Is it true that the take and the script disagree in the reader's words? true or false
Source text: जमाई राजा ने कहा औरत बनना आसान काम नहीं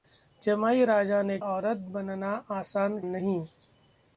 true